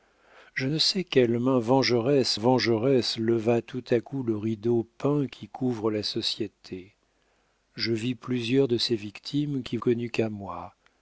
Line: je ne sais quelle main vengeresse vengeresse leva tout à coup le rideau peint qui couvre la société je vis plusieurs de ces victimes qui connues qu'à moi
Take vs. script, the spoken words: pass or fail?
pass